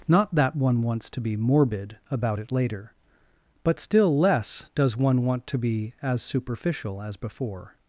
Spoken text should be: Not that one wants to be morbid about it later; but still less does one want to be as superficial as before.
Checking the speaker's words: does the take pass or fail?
pass